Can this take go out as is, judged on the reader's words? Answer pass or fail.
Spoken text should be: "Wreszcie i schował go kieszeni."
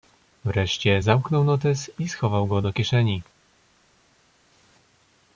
fail